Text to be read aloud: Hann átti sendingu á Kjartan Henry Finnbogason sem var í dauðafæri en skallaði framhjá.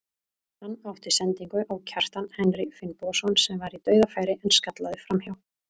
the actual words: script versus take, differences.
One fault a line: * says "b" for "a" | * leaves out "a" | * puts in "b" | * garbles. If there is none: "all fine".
all fine